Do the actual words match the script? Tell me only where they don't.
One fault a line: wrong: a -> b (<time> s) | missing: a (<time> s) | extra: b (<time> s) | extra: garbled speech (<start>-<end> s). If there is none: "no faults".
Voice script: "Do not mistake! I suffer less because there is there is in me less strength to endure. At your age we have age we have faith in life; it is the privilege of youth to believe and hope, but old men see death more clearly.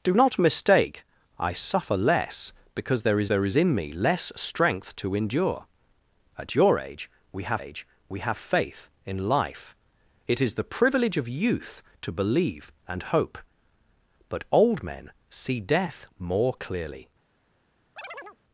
no faults